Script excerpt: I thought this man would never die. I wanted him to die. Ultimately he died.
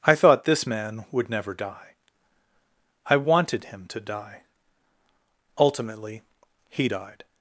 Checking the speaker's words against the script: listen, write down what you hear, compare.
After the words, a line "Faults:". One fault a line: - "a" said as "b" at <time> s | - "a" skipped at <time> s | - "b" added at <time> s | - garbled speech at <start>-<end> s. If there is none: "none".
I thought this man would never die. I wanted him to die. Ultimately he died.
Faults:
none